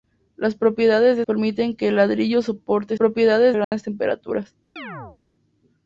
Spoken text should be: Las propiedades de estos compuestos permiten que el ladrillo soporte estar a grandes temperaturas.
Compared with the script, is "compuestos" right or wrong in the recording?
wrong